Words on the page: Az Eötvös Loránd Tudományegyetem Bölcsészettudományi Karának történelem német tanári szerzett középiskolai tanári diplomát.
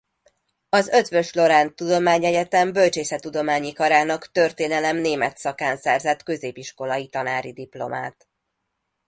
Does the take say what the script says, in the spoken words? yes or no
no